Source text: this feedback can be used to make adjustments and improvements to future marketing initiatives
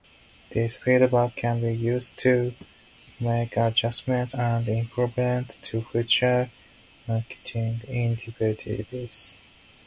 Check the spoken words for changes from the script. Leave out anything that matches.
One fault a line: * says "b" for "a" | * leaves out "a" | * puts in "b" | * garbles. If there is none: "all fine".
all fine